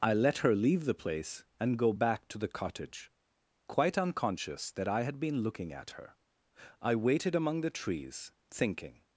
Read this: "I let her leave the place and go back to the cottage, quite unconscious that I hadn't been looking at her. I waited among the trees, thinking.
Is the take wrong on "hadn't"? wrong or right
wrong